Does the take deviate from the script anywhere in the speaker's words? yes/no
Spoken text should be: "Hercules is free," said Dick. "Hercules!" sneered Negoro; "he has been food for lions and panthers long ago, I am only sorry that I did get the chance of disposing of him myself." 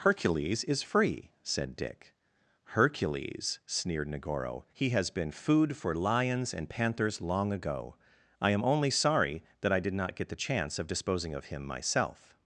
yes